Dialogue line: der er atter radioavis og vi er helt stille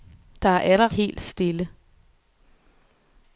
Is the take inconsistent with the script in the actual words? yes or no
yes